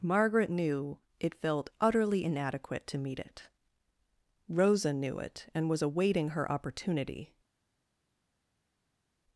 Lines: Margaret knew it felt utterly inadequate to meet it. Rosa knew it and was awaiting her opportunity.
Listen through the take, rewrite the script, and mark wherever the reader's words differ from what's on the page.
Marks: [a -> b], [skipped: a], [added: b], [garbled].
Margaret knew it felt utterly inadequate to meet it. Rosa knew it and was awaiting her opportunity.